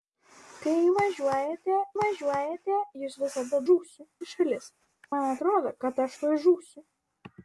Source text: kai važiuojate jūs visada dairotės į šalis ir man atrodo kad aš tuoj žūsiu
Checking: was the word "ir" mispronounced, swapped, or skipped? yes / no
yes